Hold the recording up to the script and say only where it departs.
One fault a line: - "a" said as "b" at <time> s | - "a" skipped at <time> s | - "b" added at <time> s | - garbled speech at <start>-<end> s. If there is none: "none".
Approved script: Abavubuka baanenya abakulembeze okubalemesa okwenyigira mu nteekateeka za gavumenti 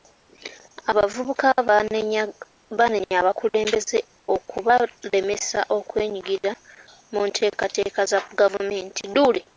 none